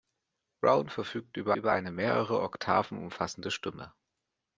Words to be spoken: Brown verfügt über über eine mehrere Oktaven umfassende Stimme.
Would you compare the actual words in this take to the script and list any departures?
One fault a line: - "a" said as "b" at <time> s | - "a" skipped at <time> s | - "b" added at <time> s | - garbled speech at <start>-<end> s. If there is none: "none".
none